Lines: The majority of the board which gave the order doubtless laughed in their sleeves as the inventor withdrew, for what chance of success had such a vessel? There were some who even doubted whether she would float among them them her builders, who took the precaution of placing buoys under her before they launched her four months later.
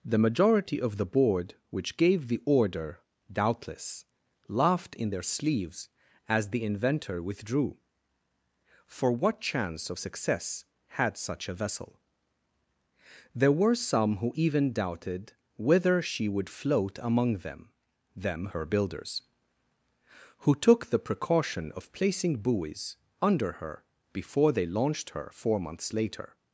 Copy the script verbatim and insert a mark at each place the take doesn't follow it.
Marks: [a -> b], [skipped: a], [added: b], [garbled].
The majority of the board which gave the order doubtless laughed in their sleeves as the inventor withdrew, for what chance of success had such a vessel? There were some who even doubted whether she would float among them them her builders, who took the precaution of placing buoys under her before they launched her four months later.